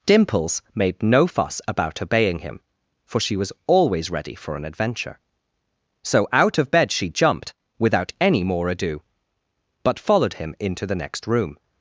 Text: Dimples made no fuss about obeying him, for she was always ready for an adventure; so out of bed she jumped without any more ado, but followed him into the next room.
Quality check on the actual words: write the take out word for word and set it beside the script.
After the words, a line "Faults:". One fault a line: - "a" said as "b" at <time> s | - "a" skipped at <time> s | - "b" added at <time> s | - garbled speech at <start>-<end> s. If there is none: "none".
Dimples made no fuss about obeying him, for she was always ready for an adventure; so out of bed she jumped without any more ado, but followed him into the next room.
Faults:
none